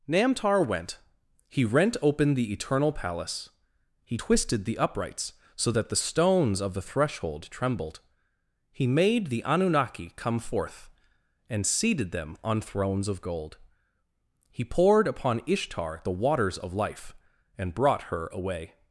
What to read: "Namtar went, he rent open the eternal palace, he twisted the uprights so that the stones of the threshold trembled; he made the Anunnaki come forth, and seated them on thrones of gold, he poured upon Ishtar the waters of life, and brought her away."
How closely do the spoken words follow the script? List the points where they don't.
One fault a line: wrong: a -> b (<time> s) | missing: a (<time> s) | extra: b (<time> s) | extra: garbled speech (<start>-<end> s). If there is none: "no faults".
no faults